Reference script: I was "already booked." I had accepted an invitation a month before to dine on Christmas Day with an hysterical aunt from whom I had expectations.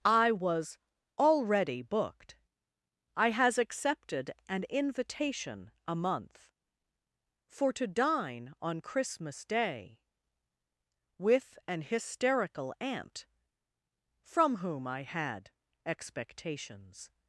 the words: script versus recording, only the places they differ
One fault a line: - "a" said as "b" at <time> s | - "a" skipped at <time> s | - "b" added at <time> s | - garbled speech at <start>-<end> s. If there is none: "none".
- "had" said as "has" at 3.3 s
- "before" said as "for" at 7.5 s